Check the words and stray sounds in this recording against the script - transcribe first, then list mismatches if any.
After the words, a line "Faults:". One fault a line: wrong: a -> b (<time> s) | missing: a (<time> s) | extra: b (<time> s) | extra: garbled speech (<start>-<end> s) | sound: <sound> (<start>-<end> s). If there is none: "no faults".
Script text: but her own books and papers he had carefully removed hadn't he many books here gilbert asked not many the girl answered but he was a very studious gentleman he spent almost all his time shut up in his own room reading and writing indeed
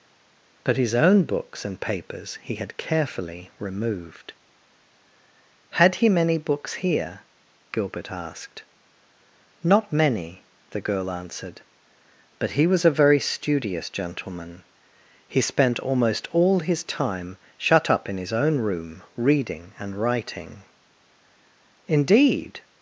but his own books and papers he had carefully removed had he many books here gilbert asked not many the girl answered but he was a very studious gentleman he spent almost all his time shut up in his own room reading and writing indeed
Faults:
wrong: her -> his (0.8 s)
wrong: hadn't -> had (5.7 s)